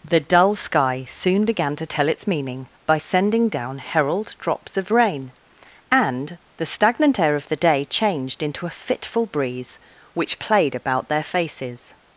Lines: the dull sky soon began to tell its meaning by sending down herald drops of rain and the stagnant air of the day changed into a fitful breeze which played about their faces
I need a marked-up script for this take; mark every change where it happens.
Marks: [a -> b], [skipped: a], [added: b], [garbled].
the dull sky soon began to tell its meaning by sending down herald drops of rain and the stagnant air of the day changed into a fitful breeze which played about their faces